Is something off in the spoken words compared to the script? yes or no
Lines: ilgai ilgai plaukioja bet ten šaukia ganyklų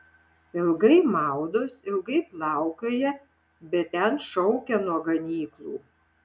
yes